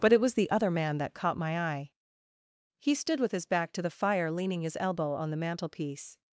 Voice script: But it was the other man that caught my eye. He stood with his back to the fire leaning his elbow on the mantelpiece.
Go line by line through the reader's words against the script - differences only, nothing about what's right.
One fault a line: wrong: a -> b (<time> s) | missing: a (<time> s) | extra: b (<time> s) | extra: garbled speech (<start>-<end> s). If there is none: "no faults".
no faults